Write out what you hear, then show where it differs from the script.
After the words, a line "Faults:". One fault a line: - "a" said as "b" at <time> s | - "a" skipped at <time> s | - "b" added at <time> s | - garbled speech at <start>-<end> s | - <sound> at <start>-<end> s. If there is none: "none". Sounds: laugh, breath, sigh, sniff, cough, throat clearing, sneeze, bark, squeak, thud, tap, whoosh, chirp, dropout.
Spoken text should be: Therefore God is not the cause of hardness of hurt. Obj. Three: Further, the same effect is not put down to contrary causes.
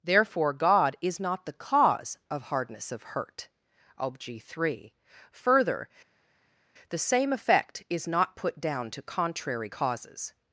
Therefore God is not the cause of hardness of hurt. Obj. Three: Further, the same effect is not put down to contrary causes.
Faults:
none